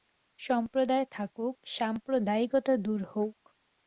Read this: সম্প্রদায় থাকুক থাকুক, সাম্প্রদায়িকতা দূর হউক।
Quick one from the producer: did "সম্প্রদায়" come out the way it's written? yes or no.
yes